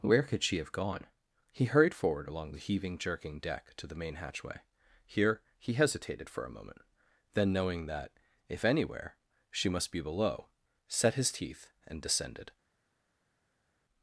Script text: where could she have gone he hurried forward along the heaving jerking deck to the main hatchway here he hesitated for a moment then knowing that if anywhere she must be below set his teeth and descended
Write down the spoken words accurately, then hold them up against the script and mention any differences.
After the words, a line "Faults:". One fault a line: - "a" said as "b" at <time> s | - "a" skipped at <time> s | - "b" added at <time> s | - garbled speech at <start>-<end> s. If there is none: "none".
where could she have gone he hurried forward along the heaving jerking deck to the main hatchway here he hesitated for a moment then knowing that if anywhere she must be below set his teeth and descended
Faults:
none